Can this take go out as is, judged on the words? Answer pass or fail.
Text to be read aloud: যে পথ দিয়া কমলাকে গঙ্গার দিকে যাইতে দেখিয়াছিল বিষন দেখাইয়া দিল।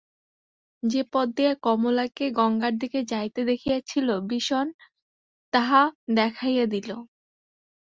fail